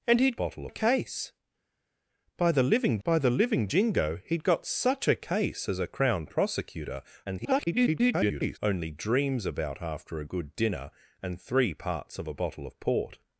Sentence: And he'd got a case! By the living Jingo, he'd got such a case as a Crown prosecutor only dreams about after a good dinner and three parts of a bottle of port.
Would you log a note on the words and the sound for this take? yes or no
yes